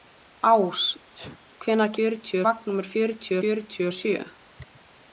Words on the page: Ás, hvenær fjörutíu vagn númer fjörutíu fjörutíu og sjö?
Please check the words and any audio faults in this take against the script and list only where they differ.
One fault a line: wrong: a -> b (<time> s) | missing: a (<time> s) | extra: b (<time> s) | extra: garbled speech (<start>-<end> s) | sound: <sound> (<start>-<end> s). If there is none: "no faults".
sound: sneeze (1.1-1.4 s)